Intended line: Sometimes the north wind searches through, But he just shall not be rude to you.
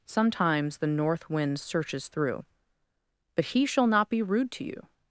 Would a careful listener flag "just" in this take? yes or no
yes